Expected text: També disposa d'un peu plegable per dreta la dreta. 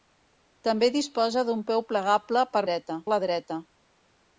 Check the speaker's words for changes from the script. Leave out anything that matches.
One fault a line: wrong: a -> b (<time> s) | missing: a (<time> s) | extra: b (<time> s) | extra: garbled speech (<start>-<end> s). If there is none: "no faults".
no faults